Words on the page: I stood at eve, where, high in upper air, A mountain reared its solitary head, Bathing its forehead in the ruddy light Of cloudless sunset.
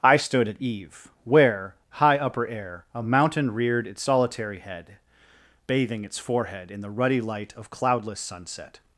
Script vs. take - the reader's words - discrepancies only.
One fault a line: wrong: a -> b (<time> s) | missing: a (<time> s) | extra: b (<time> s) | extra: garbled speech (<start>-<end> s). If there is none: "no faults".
missing: in (2.2 s)